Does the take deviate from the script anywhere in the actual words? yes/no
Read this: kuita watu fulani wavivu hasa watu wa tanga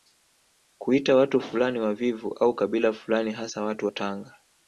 yes